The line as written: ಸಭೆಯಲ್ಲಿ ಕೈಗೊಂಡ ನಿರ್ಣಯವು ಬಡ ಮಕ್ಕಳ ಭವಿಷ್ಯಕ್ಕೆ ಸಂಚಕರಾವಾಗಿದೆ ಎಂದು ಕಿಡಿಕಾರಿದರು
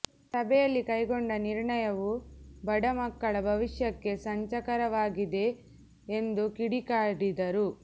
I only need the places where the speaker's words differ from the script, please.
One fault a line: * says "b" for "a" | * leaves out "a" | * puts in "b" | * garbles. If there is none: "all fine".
all fine